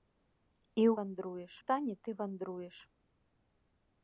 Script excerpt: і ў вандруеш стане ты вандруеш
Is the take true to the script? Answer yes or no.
yes